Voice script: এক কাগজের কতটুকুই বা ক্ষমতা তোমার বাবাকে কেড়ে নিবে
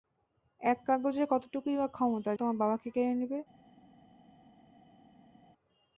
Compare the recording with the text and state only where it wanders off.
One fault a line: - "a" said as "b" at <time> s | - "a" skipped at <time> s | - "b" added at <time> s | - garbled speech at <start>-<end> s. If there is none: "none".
none